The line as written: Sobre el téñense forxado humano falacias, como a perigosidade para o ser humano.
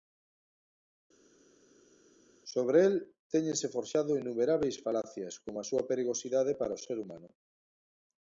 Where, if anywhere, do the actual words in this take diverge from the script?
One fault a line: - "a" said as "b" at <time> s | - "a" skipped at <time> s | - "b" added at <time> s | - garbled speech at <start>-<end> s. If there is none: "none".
- "humano" said as "innumerábeis" at 4.2 s
- "súa" added at 5.7 s